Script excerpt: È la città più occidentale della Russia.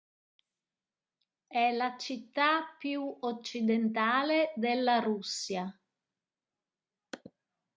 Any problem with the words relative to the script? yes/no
no